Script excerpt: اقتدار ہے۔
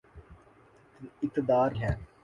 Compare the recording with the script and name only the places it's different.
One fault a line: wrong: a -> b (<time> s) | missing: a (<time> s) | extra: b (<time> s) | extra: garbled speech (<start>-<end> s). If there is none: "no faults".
no faults